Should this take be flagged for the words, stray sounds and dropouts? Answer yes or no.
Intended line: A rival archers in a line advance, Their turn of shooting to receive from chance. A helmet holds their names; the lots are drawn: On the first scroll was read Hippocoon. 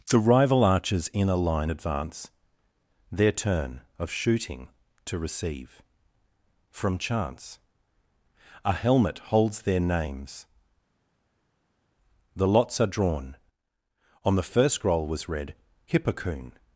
yes